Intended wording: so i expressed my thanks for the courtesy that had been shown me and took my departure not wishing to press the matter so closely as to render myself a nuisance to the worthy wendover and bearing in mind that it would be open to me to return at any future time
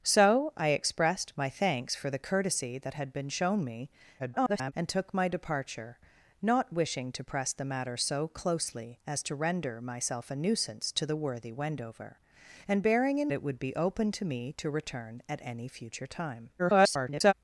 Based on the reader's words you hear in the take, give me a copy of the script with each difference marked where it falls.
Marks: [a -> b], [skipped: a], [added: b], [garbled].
so i expressed my thanks for the courtesy that had been shown me [garbled] and took my departure not wishing to press the matter so closely as to render myself a nuisance to the worthy wendover and bearing in [skipped: mind that] it would be open to me to return at any future time [garbled]